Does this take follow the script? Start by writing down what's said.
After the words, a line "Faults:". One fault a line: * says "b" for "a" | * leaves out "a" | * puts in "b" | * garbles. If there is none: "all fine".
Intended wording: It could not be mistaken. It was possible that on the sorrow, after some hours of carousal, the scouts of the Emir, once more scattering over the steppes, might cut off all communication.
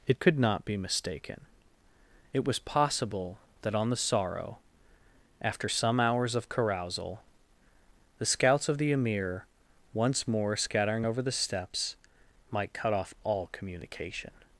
It could not be mistaken. It was possible that on the sorrow, after some hours of carousal, the scouts of the Emir, once more scattering over the steppes, might cut off all communication.
Faults:
all fine